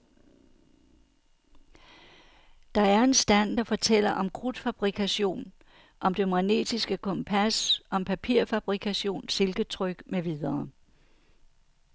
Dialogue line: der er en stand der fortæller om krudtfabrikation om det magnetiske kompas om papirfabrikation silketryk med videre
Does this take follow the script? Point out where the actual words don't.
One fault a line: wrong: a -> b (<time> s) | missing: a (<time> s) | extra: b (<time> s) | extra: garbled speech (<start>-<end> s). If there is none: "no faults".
no faults